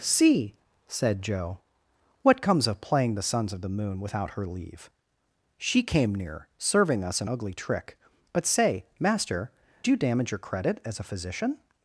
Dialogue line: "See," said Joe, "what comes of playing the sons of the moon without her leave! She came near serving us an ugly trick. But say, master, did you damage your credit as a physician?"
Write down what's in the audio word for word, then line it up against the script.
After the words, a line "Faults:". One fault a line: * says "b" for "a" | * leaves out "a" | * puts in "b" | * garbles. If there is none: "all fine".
"See," said Joe, "what comes of playing the sons of the moon without her leave! She came near serving us an ugly trick. But say, master, you damage your credit as a physician?"
Faults:
* leaves out "did"